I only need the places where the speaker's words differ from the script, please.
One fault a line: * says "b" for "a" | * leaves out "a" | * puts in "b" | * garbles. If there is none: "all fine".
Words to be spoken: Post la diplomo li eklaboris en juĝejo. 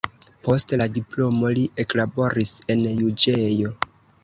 all fine